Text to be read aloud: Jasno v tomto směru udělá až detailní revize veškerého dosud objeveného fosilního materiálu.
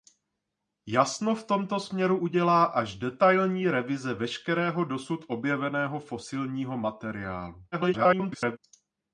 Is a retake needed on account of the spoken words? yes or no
yes